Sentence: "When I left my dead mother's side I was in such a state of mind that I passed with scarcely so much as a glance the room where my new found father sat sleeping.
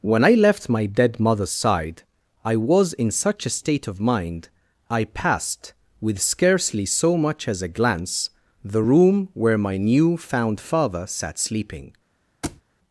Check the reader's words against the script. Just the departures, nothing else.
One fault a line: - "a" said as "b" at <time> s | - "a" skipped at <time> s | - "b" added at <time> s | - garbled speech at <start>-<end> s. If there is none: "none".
- "that" skipped at 4.5 s